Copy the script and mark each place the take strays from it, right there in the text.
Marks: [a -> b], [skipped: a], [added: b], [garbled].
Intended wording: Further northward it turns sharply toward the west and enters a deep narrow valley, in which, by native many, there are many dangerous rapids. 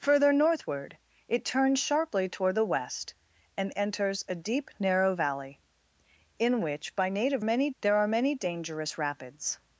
Further northward it turns sharply toward the west and enters a deep narrow valley, in which, by native many, there are many dangerous rapids.